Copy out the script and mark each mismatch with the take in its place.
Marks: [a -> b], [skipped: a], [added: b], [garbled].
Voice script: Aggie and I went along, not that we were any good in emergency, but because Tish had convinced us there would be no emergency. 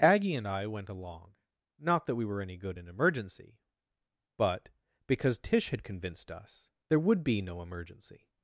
Aggie and I went along, not that we were any good in emergency, but because Tish had convinced us there would be no emergency.